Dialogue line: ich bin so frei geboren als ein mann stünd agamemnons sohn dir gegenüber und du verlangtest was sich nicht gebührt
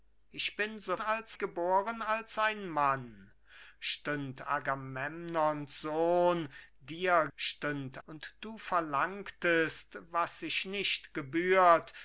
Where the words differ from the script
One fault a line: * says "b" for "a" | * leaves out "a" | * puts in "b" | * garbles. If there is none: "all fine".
* says "als" for "frei"
* says "stünd" for "gegenüber"